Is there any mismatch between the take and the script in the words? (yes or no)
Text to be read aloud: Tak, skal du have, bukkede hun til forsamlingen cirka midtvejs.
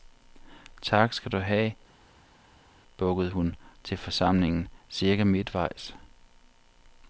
no